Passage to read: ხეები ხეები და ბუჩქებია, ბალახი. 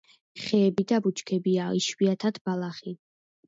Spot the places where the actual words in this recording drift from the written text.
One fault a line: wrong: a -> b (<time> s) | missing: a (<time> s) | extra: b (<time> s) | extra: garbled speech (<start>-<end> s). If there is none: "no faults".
missing: ხეები (0.8 s)
extra: იშვიათად (1.8 s)